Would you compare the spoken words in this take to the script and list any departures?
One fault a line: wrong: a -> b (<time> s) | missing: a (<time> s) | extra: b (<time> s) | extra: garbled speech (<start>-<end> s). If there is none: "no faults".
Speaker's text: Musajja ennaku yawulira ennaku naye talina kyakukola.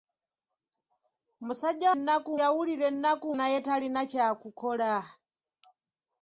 no faults